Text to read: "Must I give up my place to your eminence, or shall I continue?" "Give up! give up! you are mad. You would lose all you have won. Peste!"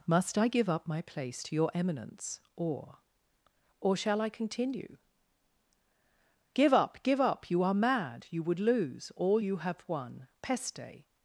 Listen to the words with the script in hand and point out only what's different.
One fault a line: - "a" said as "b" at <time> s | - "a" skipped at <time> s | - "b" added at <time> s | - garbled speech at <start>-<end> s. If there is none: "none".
- "or" added at 3.8 s